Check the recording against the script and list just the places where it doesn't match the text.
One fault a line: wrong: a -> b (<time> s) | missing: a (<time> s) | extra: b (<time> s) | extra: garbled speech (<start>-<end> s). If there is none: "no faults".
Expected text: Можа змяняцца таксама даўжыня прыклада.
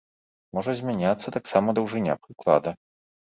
no faults